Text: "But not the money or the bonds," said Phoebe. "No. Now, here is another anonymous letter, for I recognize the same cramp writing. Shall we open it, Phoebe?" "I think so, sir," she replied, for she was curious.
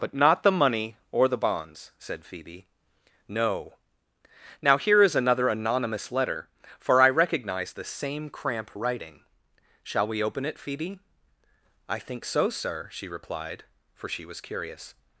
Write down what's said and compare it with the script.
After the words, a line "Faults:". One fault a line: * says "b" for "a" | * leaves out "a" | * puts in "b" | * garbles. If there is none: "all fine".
"But not the money or the bonds," said Phoebe. "No. Now, here is another anonymous letter, for I recognize the same cramp writing. Shall we open it, Phoebe?" "I think so, sir," she replied, for she was curious.
Faults:
all fine